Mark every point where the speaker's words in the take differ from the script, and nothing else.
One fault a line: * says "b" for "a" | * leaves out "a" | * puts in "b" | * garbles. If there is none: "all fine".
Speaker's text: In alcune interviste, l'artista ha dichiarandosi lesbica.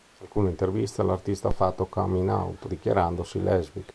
* puts in "fatto coming out"